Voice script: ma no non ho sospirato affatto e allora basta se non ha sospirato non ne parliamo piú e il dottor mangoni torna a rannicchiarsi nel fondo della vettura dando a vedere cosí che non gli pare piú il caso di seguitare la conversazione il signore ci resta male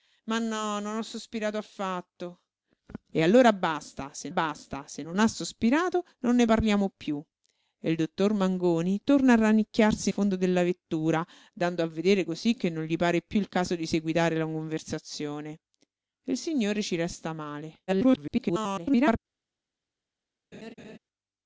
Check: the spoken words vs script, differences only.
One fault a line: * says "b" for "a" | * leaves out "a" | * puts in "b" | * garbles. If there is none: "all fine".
* puts in "basta se"
* leaves out "nel"
* garbles